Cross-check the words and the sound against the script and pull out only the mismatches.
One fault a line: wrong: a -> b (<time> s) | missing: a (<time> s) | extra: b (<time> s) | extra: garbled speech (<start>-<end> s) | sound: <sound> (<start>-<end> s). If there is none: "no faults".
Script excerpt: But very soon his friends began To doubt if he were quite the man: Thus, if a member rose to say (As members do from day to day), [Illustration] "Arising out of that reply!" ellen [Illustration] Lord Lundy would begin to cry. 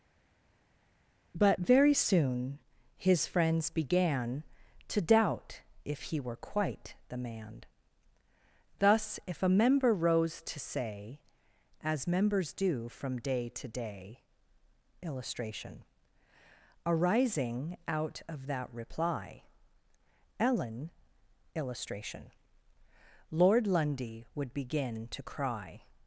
no faults